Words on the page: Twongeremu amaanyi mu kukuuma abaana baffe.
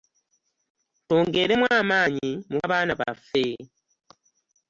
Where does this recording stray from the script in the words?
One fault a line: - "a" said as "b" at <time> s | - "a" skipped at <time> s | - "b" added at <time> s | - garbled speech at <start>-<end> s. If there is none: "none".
- "kukuuma" skipped at 2.6 s